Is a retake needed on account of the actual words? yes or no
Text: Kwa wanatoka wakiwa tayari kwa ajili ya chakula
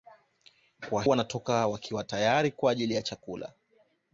no